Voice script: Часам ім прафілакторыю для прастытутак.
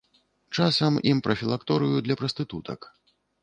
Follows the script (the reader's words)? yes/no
yes